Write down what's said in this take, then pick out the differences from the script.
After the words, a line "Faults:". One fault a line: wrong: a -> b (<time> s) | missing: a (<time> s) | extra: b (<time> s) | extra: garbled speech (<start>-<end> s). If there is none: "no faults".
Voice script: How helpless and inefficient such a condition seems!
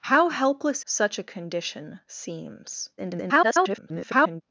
How helpless such a condition seems! [garbled]
Faults:
missing: and inefficient (0.8 s)
extra: garbled speech (3.0-4.4 s)